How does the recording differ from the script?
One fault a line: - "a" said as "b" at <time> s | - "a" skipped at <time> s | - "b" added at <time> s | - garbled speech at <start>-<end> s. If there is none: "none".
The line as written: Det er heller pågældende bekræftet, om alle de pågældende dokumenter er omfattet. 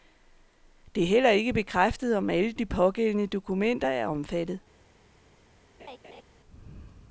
- "pågældende" said as "ikke" at 1.3 s